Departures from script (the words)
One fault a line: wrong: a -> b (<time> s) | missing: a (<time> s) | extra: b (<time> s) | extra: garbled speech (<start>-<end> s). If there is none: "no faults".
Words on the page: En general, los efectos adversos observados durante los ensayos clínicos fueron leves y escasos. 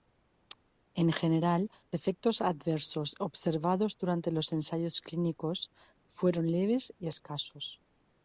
missing: los (1.7 s)